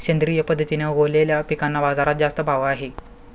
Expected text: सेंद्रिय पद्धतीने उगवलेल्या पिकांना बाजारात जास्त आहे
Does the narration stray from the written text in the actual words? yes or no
yes